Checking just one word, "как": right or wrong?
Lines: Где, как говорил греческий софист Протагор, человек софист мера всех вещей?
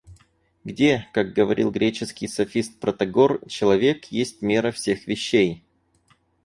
right